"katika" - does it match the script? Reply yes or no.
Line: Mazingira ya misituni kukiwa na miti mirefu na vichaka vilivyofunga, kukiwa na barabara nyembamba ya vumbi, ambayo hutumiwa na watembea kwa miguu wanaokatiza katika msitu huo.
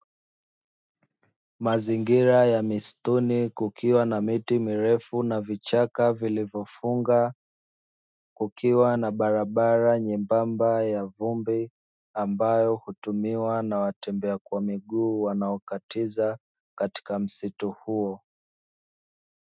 yes